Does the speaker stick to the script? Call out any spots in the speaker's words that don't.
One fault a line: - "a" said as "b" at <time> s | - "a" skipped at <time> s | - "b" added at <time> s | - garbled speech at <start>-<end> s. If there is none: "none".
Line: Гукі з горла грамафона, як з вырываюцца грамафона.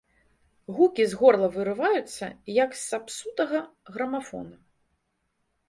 - "грамафона" said as "вырываюцца" at 1.6 s
- "вырываюцца" said as "сапсутага" at 2.9 s